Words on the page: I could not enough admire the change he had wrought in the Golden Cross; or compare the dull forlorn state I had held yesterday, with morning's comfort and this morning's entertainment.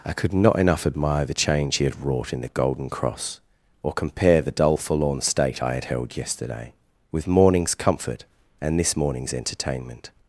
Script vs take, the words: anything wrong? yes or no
no